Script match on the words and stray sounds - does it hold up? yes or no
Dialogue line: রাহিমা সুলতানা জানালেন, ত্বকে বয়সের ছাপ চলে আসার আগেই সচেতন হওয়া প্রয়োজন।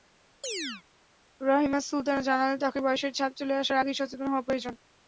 no